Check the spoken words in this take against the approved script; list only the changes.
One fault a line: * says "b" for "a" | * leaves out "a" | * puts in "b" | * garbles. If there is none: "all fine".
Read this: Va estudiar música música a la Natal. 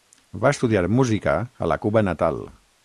* leaves out "música"
* puts in "Cuba"